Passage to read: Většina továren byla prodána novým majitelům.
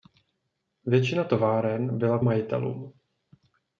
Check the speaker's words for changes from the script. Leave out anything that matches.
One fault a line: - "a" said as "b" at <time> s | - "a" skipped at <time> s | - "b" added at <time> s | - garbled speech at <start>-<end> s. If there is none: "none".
- "prodána novým" skipped at 2.2 s